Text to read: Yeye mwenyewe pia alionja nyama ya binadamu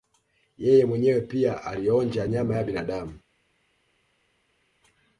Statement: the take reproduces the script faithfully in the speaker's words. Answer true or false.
true